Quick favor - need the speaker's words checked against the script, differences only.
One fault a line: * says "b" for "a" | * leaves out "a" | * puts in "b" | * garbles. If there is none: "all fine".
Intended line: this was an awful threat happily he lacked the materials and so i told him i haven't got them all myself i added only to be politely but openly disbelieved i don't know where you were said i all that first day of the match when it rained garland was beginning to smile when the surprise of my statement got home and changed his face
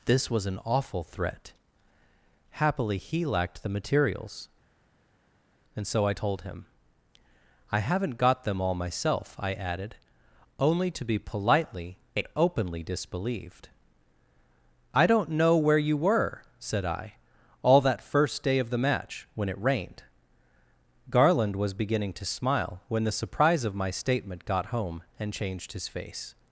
* says "and" for "but"